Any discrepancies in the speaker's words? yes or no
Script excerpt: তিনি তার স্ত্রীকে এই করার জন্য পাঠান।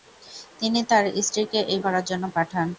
no